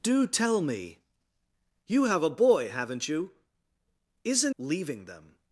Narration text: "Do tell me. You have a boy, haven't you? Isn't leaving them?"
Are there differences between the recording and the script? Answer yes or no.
no